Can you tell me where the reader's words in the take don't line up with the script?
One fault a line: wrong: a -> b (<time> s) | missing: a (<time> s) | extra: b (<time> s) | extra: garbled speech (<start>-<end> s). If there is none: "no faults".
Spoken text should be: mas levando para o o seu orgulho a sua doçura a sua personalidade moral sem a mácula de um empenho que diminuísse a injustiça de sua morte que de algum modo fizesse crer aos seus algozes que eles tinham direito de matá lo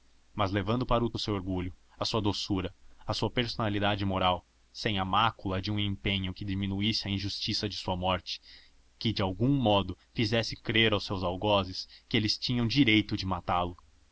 no faults